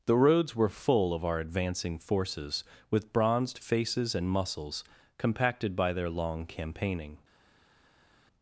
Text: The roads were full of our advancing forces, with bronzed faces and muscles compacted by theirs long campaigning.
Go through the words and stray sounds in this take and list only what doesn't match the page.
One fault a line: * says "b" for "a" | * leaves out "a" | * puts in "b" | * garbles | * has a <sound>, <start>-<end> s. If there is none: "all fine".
* says "their" for "theirs"